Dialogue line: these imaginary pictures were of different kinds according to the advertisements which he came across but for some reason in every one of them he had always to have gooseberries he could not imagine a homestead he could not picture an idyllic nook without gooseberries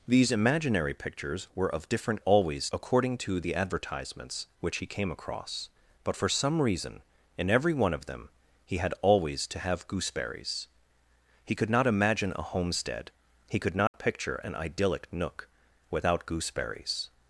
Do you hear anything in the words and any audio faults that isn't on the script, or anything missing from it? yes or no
yes